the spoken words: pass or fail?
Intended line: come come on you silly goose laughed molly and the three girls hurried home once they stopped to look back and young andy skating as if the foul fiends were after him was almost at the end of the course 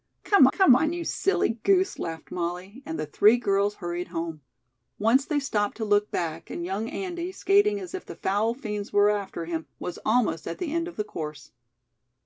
pass